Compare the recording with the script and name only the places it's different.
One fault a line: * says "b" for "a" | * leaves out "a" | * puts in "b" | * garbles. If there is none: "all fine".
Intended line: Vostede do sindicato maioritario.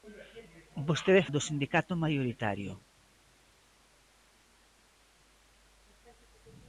all fine